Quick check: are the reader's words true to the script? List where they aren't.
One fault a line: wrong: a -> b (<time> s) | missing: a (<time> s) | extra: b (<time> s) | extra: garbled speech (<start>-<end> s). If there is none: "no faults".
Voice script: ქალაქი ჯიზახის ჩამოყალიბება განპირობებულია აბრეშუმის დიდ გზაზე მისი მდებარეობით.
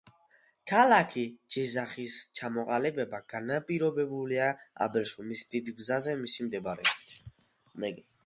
no faults